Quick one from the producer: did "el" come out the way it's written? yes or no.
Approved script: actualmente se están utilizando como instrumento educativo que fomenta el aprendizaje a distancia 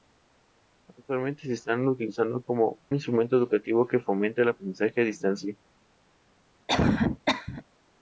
yes